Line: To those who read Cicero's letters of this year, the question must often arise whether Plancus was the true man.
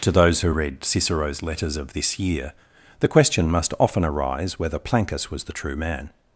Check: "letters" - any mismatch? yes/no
no